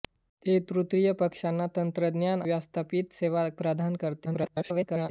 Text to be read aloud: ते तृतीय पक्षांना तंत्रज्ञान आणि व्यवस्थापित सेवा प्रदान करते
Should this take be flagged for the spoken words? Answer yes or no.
yes